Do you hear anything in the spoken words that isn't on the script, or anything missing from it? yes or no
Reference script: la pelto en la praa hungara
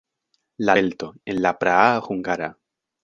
no